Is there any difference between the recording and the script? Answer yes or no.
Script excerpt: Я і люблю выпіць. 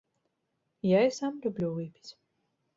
yes